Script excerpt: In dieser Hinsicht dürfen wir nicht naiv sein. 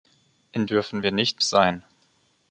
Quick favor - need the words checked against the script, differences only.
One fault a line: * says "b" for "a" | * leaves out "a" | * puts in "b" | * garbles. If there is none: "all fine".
* leaves out "dieser Hinsicht"
* leaves out "naiv"